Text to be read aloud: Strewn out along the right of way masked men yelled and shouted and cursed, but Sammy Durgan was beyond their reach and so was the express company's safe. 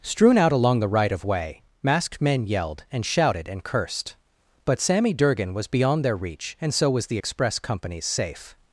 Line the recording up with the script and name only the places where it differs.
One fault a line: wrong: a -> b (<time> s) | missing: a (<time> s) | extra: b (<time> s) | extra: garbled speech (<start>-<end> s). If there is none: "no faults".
no faults